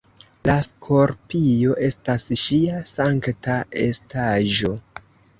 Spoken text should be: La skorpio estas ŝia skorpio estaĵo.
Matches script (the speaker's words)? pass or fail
fail